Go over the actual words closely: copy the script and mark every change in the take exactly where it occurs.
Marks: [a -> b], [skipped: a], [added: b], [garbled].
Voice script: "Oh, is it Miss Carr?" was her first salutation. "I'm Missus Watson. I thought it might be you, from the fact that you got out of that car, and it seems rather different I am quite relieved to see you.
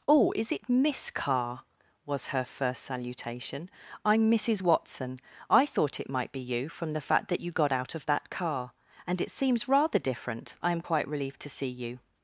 "Oh, is it Miss Carr?" was her first salutation. "I'm Missus Watson. I thought it might be you, from the fact that you got out of that car, and it seems rather different I am quite relieved to see you.